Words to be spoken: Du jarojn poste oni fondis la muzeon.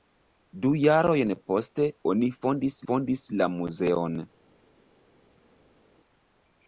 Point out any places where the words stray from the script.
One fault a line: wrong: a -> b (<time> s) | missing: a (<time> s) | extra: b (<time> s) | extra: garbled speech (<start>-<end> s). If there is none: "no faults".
extra: fondis (2.9 s)